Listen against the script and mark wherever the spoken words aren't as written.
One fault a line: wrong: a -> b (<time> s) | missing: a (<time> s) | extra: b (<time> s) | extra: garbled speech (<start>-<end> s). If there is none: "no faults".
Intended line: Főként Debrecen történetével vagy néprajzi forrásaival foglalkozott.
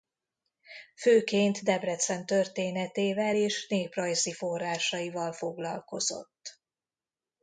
wrong: vagy -> és (3.3 s)